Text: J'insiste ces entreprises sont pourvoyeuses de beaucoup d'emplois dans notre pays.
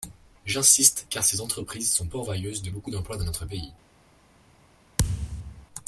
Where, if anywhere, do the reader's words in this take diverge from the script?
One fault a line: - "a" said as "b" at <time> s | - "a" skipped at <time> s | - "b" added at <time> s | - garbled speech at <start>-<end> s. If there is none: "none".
- "car" added at 1.1 s